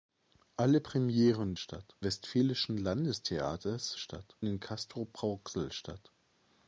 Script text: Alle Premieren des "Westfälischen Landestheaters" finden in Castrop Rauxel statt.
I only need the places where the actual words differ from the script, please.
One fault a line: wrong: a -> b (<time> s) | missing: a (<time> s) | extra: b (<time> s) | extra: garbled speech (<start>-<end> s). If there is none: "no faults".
wrong: des -> statt (1.6 s)
wrong: finden -> statt (4.0 s)